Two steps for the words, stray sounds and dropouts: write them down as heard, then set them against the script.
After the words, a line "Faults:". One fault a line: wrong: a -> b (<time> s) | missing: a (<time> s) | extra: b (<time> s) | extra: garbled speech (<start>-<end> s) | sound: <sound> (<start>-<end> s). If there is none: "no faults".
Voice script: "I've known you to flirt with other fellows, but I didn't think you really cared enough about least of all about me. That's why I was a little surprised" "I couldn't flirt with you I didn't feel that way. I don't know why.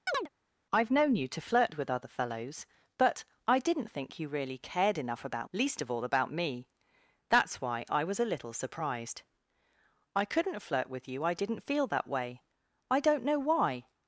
"I've known you to flirt with other fellows, but I didn't think you really cared enough about least of all about me. That's why I was a little surprised" "I couldn't flirt with you I didn't feel that way. I don't know why.
Faults:
sound: chirp (0.1-0.3 s)